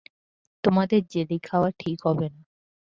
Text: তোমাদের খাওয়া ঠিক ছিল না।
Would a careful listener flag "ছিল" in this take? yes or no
yes